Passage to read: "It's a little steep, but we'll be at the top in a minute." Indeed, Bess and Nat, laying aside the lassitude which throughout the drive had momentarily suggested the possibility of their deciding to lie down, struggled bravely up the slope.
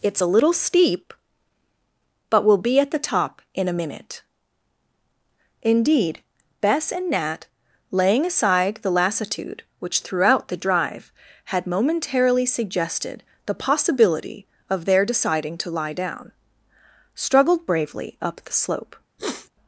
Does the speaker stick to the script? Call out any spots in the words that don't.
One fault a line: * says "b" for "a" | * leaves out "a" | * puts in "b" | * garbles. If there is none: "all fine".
all fine